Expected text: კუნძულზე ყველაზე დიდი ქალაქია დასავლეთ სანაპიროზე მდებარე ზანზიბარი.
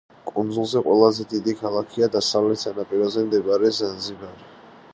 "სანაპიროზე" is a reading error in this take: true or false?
false